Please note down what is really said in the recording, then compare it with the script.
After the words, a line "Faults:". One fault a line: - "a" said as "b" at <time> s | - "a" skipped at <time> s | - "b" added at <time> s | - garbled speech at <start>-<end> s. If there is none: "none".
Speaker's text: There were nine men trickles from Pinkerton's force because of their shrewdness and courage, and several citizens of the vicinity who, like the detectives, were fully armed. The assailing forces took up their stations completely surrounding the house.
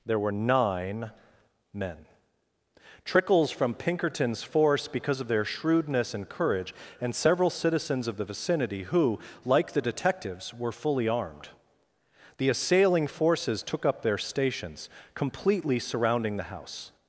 There were nine men trickles from Pinkerton's force because of their shrewdness and courage, and several citizens of the vicinity who, like the detectives, were fully armed. The assailing forces took up their stations completely surrounding the house.
Faults:
none